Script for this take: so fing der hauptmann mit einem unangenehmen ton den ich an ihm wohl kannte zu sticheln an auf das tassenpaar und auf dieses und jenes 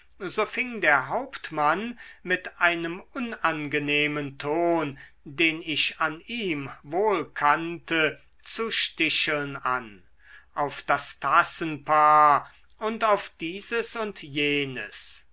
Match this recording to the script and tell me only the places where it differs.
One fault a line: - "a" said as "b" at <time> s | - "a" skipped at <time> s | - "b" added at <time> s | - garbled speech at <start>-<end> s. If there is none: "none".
none